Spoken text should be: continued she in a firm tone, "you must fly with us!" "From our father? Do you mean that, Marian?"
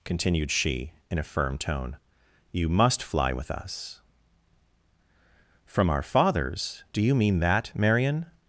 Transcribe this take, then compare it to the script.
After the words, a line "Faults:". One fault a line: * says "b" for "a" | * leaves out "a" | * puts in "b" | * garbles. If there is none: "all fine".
continued she in a firm tone, "you must fly with us!" "From our fathers? Do you mean that, Marian?"
Faults:
* says "fathers" for "father"